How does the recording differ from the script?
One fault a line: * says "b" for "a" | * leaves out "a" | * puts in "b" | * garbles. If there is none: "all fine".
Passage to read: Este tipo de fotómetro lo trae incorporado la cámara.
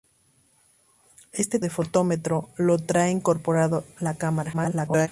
* leaves out "tipo"
* garbles